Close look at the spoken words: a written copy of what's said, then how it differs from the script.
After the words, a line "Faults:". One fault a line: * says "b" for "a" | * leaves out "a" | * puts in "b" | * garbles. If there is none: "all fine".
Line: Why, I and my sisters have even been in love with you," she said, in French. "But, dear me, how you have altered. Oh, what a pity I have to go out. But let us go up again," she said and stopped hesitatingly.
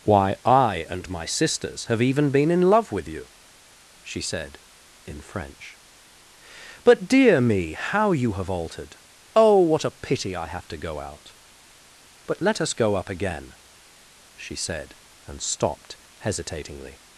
Why, I and my sisters have even been in love with you," she said, in French. "But, dear me, how you have altered. Oh, what a pity I have to go out. But let us go up again," she said and stopped hesitatingly.
Faults:
all fine